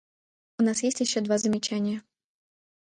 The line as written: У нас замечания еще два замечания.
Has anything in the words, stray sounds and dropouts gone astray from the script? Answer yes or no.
yes